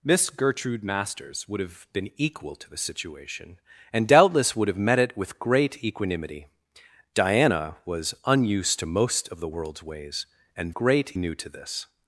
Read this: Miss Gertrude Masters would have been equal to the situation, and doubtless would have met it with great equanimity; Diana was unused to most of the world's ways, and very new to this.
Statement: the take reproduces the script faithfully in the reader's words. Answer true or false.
false